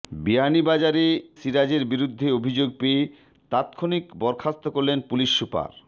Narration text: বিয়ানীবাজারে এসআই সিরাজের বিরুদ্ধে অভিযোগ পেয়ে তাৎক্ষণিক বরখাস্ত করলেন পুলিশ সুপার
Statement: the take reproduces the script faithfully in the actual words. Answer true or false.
false